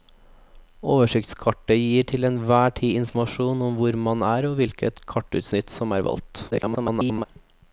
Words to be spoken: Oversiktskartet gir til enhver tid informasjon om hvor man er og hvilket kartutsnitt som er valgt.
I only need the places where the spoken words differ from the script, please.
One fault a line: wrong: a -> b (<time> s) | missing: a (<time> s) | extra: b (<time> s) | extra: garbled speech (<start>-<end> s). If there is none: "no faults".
extra: garbled speech (6.5-7.3 s)